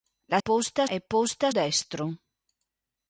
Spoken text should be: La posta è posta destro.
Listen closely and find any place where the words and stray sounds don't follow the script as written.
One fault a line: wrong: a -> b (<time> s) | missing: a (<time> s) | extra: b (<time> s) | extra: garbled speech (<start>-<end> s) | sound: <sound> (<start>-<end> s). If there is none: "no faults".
no faults